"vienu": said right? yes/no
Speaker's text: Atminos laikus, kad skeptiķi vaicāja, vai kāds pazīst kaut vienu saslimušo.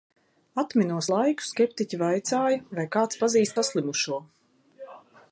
no